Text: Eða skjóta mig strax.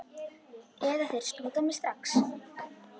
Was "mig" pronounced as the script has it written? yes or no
yes